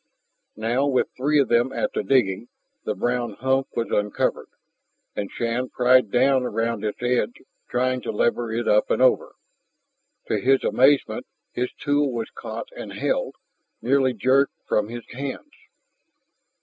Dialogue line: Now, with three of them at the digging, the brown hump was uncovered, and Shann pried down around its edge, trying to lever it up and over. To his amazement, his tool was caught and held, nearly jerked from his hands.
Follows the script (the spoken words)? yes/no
yes